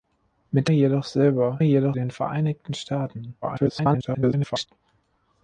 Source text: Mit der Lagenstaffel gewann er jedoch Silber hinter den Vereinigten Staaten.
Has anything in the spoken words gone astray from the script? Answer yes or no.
yes